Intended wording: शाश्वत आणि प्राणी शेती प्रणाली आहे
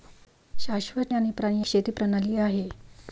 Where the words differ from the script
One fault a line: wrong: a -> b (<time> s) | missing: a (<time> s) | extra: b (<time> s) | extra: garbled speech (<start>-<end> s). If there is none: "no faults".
no faults